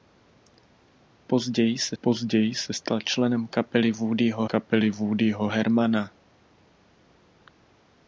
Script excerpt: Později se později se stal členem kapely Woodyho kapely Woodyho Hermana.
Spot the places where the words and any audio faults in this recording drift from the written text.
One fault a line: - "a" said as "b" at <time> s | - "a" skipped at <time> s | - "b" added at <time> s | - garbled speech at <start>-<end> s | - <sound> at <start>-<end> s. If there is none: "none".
none